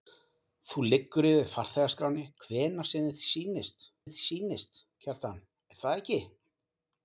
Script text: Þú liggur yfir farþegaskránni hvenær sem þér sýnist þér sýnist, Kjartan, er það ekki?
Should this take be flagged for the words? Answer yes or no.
no